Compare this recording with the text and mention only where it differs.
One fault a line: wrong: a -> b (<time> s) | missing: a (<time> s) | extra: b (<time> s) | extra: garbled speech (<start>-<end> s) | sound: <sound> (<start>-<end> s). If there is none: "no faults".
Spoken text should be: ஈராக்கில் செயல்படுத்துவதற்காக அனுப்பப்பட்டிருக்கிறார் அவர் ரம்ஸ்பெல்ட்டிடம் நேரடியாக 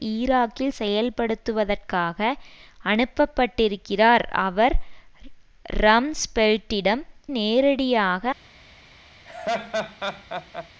sound: laugh (9.3-10.7 s)